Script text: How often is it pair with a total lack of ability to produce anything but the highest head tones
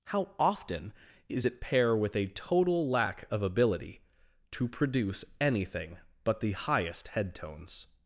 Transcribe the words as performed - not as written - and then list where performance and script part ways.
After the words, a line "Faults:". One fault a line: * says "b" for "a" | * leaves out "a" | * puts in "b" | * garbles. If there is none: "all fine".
How often is it pair with a total lack of ability to produce anything but the highest head tones
Faults:
all fine